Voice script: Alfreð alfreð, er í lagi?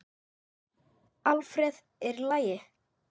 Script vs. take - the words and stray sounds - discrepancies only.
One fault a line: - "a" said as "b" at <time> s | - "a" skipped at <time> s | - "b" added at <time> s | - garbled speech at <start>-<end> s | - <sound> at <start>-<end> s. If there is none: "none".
- "alfreð" skipped at 1.8 s